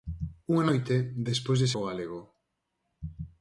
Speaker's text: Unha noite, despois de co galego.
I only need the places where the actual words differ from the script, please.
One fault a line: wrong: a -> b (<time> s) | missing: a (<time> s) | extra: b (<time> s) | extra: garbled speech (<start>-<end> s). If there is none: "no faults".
no faults